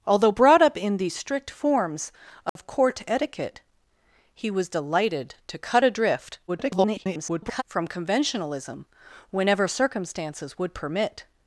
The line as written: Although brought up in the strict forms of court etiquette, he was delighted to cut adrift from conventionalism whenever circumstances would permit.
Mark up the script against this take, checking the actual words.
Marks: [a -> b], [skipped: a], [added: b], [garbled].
Although brought up in the strict forms of court etiquette, he was delighted to cut adrift [garbled] from conventionalism whenever circumstances would permit.